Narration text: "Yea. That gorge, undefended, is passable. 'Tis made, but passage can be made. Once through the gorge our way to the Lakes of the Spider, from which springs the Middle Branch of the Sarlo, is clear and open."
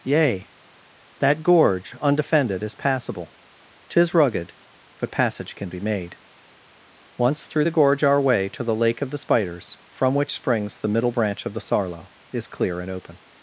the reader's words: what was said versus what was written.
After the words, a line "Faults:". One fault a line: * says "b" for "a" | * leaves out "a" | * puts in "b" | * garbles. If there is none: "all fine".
"Yea. That gorge, undefended, is passable. 'Tis rugged, but passage can be made. Once through the gorge our way to the Lake of the Spiders, from which springs the Middle Branch of the Sarlo, is clear and open."
Faults:
* says "rugged" for "made"
* says "Lake" for "Lakes"
* says "Spiders" for "Spider"